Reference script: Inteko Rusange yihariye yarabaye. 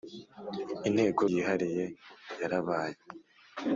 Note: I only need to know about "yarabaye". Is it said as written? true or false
true